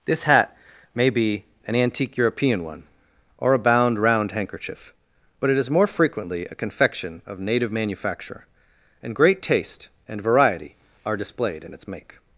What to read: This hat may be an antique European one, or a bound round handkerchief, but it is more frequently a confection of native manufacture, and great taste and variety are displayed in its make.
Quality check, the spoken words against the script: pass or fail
pass